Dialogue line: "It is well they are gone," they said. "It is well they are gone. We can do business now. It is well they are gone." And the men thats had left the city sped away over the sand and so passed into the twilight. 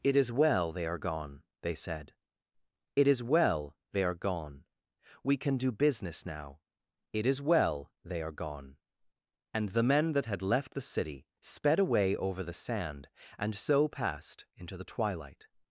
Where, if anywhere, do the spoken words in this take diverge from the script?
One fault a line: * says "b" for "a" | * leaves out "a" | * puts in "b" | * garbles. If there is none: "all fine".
* says "that" for "thats"